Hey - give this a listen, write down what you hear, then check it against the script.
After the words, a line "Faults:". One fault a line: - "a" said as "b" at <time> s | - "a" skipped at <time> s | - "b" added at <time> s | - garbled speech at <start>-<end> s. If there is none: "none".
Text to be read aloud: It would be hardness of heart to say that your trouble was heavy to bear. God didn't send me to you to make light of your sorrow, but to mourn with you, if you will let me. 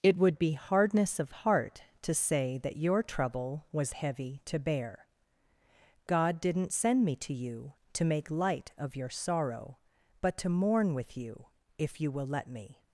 It would be hardness of heart to say that your trouble was heavy to bear. God didn't send me to you to make light of your sorrow, but to mourn with you, if you will let me.
Faults:
none